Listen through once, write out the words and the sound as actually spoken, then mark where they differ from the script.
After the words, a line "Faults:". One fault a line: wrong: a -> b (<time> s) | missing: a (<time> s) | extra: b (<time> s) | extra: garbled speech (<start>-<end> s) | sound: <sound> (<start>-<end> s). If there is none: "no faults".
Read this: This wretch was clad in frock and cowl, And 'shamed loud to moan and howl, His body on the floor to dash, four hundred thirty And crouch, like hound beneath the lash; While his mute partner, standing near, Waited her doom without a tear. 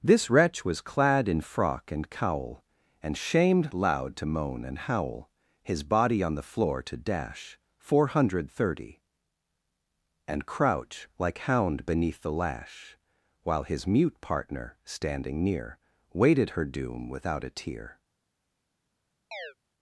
This wretch was clad in frock and cowl, And 'shamed loud to moan and howl, His body on the floor to dash, four hundred thirty And crouch, like hound beneath the lash; While his mute partner, standing near, Waited her doom without a tear.
Faults:
sound: chirp (19.3-19.5 s)